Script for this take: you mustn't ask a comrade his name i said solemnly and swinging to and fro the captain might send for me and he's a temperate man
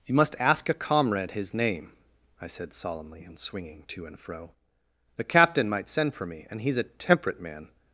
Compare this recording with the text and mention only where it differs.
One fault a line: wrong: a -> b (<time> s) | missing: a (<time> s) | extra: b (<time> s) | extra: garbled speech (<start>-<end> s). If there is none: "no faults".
wrong: mustn't -> must (0.1 s)